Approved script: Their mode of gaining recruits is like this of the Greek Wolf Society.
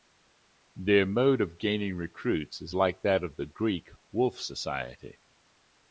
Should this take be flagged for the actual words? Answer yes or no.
yes